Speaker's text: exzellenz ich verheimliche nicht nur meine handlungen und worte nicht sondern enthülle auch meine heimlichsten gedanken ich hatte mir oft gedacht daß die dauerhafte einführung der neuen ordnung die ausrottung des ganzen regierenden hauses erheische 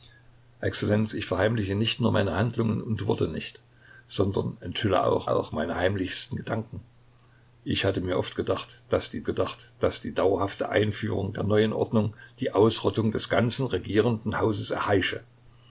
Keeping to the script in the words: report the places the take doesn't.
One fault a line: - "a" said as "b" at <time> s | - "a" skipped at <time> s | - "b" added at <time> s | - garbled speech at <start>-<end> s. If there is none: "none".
- "auch" added at 5.3 s
- "gedacht daß die" added at 9.3 s